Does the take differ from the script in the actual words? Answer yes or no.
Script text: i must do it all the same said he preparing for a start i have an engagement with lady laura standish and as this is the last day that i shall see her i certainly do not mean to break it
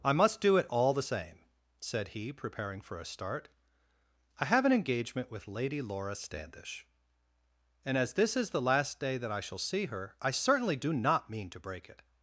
no